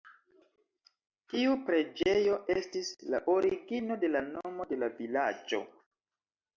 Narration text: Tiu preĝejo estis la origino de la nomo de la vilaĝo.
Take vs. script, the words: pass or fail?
pass